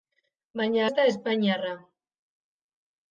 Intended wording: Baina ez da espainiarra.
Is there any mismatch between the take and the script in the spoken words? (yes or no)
no